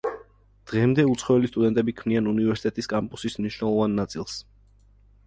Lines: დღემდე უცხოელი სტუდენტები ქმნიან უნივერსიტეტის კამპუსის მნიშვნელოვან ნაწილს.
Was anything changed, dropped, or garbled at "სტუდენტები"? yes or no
no